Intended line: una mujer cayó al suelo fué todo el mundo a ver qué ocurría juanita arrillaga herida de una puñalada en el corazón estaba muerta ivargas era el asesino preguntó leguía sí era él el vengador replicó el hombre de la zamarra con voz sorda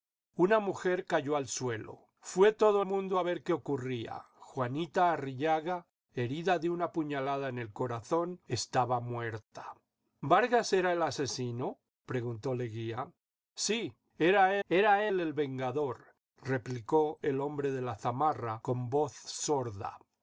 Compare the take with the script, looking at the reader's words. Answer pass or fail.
fail